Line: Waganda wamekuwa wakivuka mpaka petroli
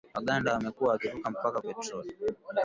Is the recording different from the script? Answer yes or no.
no